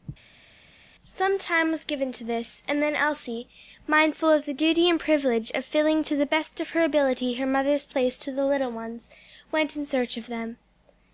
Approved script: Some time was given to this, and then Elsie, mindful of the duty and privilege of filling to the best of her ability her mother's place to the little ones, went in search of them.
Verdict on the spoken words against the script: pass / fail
pass